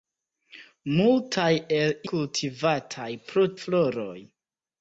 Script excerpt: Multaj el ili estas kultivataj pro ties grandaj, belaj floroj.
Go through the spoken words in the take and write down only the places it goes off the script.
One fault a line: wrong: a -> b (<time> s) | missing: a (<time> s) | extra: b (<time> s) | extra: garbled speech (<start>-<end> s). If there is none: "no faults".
missing: ili estas (1.9 s)
missing: ties grandaj belaj (3.5 s)